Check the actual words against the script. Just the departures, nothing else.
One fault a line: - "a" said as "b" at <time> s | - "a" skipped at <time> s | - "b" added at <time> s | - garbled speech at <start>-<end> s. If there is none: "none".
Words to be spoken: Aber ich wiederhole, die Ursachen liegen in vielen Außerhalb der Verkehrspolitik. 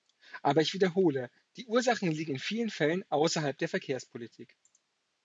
- "Fällen" added at 2.7 s